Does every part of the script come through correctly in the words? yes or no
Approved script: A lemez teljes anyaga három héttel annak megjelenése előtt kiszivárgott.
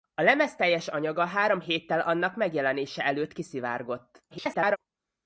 no